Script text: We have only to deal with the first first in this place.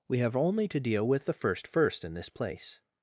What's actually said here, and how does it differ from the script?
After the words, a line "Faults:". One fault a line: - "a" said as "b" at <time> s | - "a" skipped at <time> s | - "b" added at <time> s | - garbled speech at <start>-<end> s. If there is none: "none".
We have only to deal with the first first in this place.
Faults:
none